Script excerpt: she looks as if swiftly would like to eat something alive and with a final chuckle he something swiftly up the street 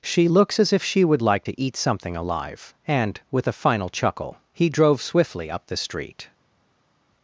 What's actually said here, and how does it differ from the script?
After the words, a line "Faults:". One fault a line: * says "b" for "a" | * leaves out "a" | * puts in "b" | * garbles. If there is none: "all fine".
she looks as if she would like to eat something alive and with a final chuckle he drove swiftly up the street
Faults:
* says "she" for "swiftly"
* says "drove" for "something"